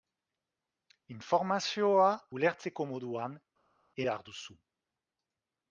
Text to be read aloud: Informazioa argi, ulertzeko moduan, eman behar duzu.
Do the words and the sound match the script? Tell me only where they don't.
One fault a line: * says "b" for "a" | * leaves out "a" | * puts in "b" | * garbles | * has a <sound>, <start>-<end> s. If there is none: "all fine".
* leaves out "argi"
* leaves out "eman"